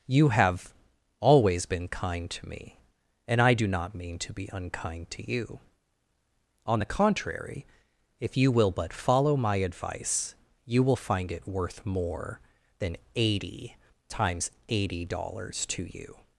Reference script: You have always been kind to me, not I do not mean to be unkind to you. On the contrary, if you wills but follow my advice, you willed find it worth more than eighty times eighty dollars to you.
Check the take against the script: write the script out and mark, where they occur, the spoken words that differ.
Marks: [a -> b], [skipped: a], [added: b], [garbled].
You have always been kind to me, [not -> and] I do not mean to be unkind to you. On the contrary, if you [wills -> will] but follow my advice, you [willed -> will] find it worth more than eighty times eighty dollars to you.